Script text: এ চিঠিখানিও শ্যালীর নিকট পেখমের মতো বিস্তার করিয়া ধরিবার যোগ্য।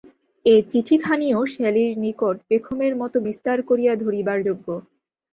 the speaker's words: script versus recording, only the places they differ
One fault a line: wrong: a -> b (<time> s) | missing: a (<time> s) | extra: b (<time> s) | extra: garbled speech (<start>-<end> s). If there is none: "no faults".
no faults